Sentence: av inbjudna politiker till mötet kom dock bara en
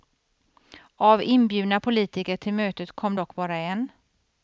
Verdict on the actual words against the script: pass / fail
pass